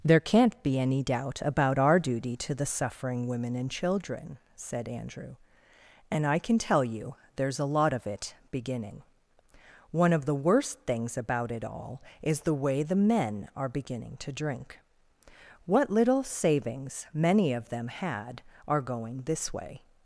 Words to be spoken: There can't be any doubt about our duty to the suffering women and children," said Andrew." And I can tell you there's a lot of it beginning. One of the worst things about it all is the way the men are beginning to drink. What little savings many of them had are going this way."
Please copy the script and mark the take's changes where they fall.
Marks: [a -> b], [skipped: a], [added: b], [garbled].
There can't be any doubt about our duty to the suffering women and children," said Andrew." And I can tell you there's a lot of it beginning. One of the worst things about it all is the way the men are beginning to drink. What little savings many of them had are going this way."